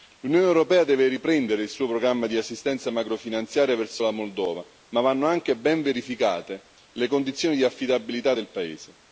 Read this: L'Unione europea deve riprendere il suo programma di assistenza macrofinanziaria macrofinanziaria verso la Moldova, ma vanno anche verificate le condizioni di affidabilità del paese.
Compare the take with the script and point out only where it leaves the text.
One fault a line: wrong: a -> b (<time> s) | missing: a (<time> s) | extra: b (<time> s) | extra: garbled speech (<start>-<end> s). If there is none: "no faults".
missing: macrofinanziaria (3.8 s)
extra: ben (5.6 s)